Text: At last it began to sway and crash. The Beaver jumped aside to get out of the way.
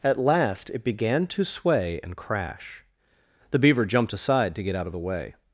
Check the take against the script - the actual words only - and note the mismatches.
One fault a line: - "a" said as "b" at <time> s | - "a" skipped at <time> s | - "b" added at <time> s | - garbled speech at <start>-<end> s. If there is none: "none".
none